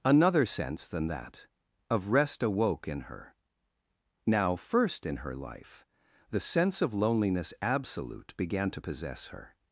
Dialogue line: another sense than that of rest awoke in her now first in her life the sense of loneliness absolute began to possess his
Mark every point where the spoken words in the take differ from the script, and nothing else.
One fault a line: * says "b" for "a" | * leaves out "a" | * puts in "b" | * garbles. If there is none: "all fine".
* says "her" for "his"